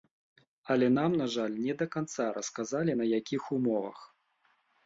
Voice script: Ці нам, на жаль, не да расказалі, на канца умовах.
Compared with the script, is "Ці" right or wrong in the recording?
wrong